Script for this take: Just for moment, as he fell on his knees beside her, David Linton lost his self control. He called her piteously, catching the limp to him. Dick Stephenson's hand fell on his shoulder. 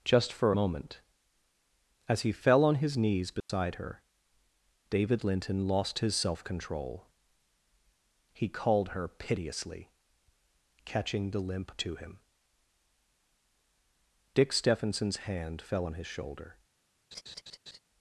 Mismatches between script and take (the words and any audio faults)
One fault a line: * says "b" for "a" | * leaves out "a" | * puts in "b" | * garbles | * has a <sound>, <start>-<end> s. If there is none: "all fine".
* has a dropout, 3.4-3.5 s
* has a laugh, 17.1-17.8 s